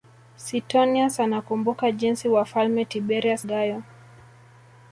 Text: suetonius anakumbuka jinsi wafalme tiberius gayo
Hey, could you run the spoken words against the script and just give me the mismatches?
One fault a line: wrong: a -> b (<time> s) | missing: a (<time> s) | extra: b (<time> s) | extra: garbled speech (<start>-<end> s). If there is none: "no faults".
no faults